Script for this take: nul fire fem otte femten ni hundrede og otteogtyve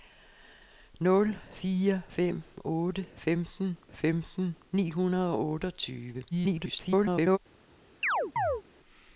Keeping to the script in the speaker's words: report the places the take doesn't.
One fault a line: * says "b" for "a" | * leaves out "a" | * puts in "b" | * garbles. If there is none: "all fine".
* puts in "femten"
* garbles